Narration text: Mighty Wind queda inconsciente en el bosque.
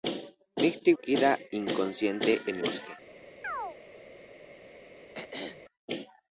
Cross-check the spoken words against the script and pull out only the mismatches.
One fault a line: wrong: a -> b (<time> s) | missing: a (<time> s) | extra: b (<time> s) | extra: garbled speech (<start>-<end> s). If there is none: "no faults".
missing: Wind (0.9 s)
missing: el (2.6 s)